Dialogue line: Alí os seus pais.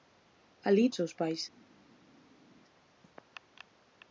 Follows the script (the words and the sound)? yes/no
yes